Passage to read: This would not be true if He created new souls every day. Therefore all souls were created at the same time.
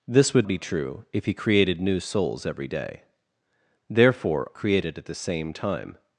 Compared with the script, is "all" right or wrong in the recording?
wrong